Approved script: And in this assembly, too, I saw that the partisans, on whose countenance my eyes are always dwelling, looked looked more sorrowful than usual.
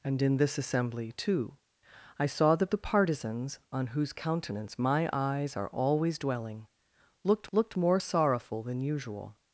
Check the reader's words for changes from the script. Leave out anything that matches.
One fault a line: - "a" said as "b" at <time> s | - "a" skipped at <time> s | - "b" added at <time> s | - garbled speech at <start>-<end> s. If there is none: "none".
none